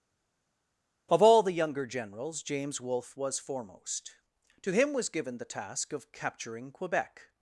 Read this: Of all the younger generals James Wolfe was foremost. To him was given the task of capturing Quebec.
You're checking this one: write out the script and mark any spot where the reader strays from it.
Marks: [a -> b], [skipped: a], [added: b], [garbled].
Of all the younger generals James Wolfe was foremost. To him was given the task of capturing Quebec.